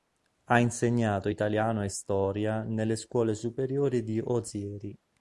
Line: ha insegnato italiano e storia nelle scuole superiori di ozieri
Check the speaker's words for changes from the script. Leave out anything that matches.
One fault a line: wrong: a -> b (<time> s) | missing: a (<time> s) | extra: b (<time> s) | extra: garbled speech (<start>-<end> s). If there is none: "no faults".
no faults